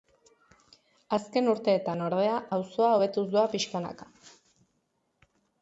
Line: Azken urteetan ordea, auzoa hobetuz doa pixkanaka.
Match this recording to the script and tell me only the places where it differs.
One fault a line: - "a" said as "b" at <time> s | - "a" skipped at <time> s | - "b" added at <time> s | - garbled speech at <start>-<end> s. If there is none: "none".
none